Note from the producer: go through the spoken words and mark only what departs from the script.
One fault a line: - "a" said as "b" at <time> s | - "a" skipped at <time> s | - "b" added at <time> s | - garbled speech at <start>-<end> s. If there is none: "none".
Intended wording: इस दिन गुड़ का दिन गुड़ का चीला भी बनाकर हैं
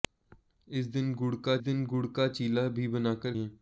none